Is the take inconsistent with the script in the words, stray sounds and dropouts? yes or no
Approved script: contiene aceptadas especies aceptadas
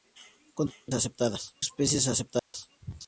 yes